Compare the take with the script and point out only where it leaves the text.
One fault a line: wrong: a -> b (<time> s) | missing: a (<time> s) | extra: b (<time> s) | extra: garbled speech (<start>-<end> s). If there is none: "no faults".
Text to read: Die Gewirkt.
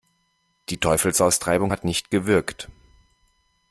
extra: Teufelsaustreibung hat nicht (0.8 s)